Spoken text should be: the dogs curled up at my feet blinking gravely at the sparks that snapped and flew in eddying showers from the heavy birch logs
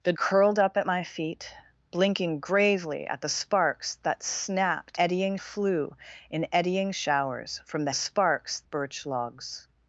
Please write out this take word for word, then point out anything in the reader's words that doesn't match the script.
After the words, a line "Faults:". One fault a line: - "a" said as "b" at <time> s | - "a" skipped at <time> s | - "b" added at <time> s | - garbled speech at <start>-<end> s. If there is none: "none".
the curled up at my feet blinking gravely at the sparks that snapped eddying flew in eddying showers from the sparks birch logs
Faults:
- "dogs" skipped at 0.1 s
- "and" said as "eddying" at 5.0 s
- "heavy" said as "sparks" at 7.9 s